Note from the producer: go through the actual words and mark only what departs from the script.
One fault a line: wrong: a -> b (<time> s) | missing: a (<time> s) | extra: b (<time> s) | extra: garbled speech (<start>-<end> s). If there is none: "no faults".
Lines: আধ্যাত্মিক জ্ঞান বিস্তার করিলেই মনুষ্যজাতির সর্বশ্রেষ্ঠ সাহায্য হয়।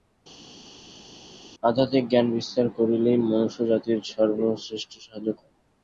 no faults